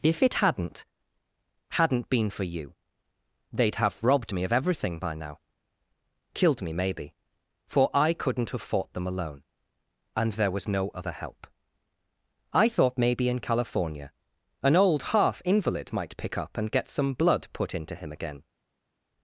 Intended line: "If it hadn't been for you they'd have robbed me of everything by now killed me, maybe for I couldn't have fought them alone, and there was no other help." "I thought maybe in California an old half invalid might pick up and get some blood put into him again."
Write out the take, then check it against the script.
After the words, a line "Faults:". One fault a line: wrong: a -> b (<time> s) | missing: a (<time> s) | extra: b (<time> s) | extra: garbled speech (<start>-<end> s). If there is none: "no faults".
"If it hadn't hadn't been for you they'd have robbed me of everything by now killed me, maybe for I couldn't have fought them alone, and there was no other help." "I thought maybe in California an old half invalid might pick up and get some blood put into him again."
Faults:
extra: hadn't (1.7 s)